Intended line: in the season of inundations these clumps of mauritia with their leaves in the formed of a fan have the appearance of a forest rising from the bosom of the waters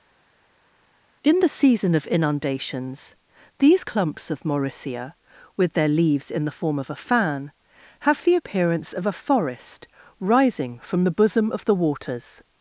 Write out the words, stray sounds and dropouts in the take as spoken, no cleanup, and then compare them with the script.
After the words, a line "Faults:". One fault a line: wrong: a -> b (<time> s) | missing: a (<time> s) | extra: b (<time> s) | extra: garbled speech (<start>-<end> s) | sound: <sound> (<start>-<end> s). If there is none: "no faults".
in the season of inundations these clumps of mauritia with their leaves in the form of a fan have the appearance of a forest rising from the bosom of the waters
Faults:
wrong: formed -> form (6.5 s)